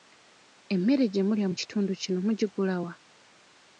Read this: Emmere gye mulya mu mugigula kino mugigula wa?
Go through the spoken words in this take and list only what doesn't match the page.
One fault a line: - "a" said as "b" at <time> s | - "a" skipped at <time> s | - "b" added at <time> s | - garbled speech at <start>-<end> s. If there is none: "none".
- "mugigula" said as "kitundu" at 1.6 s